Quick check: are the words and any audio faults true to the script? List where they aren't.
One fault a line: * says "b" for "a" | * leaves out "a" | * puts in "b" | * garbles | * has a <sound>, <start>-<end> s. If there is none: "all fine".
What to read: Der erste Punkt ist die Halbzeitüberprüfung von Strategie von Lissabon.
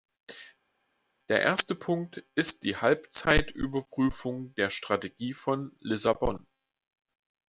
* says "der" for "von"